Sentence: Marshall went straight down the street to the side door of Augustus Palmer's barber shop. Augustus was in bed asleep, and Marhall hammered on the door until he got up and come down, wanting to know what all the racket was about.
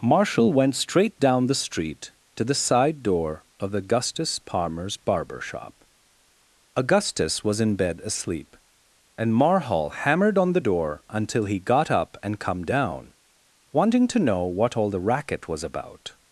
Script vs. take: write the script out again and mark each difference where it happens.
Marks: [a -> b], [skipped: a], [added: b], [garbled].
Marshall went straight down the street to the side door of Augustus Palmer's barber shop. Augustus was in bed asleep, and Marhall hammered on the door until he got up and come down, wanting to know what all the racket was about.